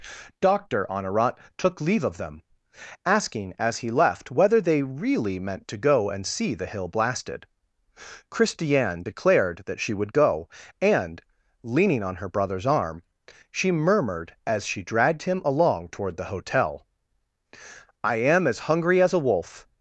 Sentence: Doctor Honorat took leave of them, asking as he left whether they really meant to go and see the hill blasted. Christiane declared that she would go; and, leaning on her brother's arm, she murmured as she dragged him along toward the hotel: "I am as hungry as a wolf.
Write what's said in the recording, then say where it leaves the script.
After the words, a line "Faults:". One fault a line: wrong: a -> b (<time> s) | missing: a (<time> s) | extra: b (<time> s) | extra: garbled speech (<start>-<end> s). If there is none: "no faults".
Doctor Honorat took leave of them, asking as he left whether they really meant to go and see the hill blasted. Christiane declared that she would go; and, leaning on her brother's arm, she murmured as she dragged him along toward the hotel: "I am as hungry as a wolf.
Faults:
no faults